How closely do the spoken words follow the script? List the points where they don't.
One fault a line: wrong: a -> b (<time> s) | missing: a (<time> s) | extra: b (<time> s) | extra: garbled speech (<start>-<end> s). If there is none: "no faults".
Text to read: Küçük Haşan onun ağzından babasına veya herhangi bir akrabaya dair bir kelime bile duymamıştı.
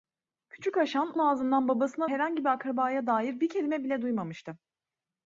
missing: onun (1.1 s)
missing: veya (2.1 s)